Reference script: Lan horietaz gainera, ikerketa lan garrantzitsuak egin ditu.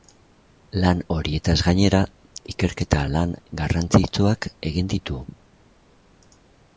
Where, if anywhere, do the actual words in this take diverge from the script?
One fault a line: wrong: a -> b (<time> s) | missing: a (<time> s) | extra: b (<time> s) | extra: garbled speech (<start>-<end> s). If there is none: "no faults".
no faults